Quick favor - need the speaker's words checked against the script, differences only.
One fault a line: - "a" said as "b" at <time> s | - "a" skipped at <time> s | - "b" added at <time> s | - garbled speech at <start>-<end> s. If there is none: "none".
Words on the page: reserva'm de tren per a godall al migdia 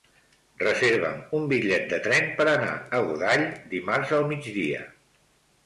- "un bitllet" added at 1.4 s
- "anar" added at 2.5 s
- "dimarts" added at 3.8 s